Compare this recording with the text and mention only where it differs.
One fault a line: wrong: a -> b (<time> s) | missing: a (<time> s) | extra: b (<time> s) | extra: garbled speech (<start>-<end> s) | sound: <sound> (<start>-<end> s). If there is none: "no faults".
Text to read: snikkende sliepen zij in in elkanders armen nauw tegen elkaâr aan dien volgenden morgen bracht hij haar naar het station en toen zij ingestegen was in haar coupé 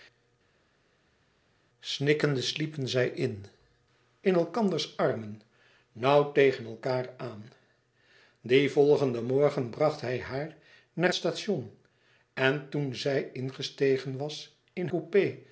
missing: het (11.1 s)
missing: haar (14.9 s)